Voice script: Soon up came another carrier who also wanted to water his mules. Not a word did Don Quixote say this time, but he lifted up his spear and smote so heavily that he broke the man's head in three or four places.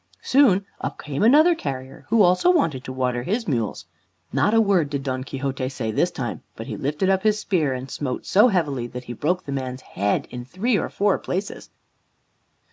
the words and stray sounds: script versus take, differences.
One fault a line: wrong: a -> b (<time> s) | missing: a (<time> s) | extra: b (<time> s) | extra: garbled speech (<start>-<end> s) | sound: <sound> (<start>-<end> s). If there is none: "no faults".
no faults